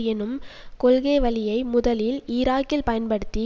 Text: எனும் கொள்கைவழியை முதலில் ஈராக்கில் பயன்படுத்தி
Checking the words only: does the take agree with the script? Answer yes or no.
yes